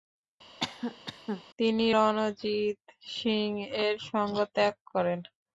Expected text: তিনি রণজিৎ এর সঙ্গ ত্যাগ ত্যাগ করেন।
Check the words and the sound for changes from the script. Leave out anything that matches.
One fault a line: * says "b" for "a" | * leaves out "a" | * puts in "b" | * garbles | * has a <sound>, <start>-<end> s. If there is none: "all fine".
* has a cough, 0.6-1.4 s
* puts in "সিং"
* leaves out "ত্যাগ"